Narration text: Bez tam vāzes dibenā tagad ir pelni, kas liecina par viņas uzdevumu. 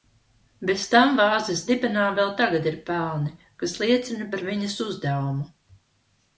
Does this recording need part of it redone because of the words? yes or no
yes